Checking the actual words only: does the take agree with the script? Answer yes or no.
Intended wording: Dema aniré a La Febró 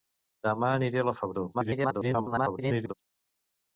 no